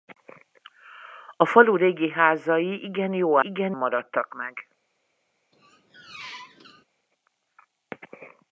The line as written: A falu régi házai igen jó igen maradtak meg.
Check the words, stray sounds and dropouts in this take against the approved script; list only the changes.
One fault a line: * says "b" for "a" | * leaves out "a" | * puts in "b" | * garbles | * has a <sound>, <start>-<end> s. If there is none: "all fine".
* has a squeak, 5.5-6.8 s